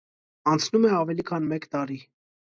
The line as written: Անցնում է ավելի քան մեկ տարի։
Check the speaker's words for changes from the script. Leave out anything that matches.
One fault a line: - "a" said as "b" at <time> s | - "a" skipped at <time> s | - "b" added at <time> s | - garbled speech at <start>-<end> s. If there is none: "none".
none